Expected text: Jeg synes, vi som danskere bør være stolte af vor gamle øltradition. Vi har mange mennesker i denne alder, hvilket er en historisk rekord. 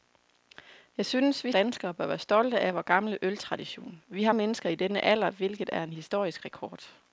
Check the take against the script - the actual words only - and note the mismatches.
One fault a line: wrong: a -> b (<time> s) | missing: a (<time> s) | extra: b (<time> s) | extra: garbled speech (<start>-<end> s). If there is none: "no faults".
missing: som (1.5 s)
missing: mange (4.3 s)